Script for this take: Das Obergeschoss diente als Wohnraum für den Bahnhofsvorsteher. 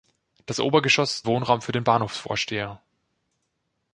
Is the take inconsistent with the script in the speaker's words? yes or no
yes